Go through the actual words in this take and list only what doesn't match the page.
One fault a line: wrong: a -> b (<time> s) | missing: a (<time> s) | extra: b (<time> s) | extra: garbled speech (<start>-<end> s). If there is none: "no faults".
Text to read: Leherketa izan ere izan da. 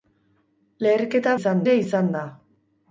no faults